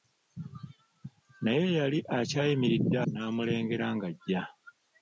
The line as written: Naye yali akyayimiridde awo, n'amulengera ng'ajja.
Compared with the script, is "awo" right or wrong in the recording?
wrong